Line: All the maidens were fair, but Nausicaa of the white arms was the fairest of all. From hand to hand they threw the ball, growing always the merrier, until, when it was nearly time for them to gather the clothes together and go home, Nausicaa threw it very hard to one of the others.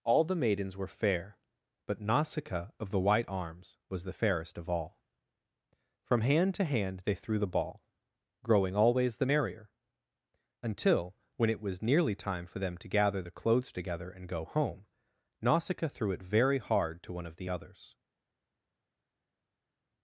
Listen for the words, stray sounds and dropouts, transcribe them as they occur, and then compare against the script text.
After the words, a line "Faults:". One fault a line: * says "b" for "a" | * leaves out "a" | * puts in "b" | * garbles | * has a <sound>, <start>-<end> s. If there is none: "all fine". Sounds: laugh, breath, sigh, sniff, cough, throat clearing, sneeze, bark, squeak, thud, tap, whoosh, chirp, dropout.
All the maidens were fair, but Nausicaa of the white arms was the fairest of all. From hand to hand they threw the ball, growing always the merrier, until, when it was nearly time for them to gather the clothes together and go home, Nausicaa threw it very hard to one of the others.
Faults:
all fine